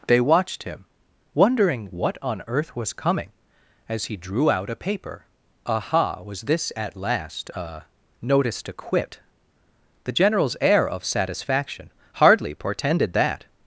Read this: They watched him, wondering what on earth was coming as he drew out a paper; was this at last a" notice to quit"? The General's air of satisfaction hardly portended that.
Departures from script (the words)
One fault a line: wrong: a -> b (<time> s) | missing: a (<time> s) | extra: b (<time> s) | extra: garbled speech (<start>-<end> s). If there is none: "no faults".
extra: aha (5.7 s)